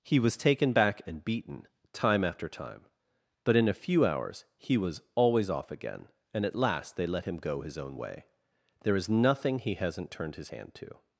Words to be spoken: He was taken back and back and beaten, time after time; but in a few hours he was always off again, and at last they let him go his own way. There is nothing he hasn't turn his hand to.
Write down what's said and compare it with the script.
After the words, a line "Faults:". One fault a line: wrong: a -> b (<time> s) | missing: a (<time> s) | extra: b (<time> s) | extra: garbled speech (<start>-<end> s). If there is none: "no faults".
He was taken back and beaten, time after time; but in a few hours he was always off again, and at last they let him go his own way. There is nothing he hasn't turned his hand to.
Faults:
missing: back and (1.2 s)
wrong: turn -> turned (10.1 s)